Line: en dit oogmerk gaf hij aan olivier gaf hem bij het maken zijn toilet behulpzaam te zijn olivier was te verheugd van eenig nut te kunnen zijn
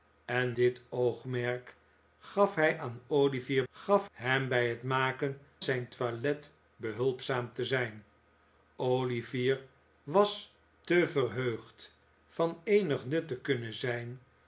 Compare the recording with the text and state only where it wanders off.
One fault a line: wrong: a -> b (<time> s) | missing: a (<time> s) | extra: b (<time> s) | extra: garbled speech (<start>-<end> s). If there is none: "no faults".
no faults